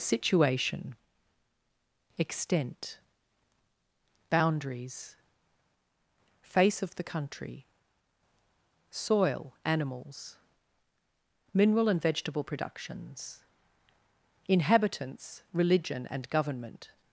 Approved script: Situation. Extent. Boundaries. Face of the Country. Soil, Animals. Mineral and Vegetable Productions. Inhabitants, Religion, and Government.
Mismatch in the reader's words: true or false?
false